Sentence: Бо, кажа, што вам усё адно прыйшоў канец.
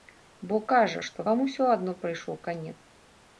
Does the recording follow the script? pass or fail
pass